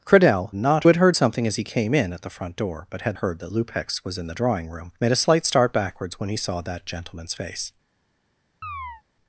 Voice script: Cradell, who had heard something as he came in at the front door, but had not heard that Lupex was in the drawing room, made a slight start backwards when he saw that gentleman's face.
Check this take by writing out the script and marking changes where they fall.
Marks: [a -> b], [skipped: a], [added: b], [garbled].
Cradell, [who -> not] had heard something as he came in at the front door, but had [skipped: not] heard that Lupex was in the drawing room, made a slight start backwards when he saw that gentleman's face.